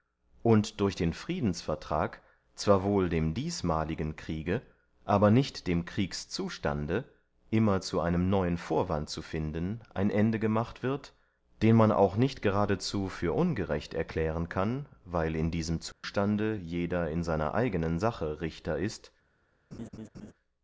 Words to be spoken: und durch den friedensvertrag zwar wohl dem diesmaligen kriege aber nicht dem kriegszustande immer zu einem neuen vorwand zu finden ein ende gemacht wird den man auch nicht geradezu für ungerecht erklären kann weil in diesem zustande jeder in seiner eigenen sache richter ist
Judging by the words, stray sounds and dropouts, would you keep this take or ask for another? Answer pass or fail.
fail